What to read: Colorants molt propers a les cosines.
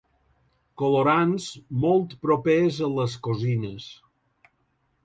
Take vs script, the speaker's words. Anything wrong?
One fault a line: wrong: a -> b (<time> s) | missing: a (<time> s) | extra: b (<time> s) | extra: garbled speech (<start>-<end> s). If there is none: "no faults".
no faults